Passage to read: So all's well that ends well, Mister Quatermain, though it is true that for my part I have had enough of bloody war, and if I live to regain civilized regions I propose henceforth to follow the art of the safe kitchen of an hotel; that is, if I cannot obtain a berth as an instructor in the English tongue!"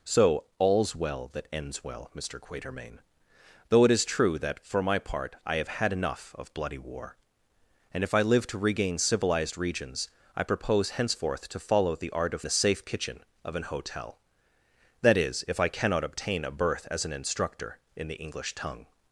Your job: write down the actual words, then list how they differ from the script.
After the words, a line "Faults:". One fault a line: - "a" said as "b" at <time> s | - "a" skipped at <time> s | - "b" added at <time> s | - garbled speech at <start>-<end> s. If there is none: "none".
So all's well that ends well, Mister Quatermain, though it is true that for my part I have had enough of bloody war, and if I live to regain civilized regions I propose henceforth to follow the art of the safe kitchen of an hotel; that is, if I cannot obtain a berth as an instructor in the English tongue!"
Faults:
none